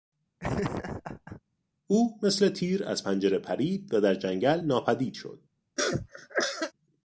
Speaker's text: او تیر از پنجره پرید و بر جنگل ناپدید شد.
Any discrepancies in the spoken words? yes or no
yes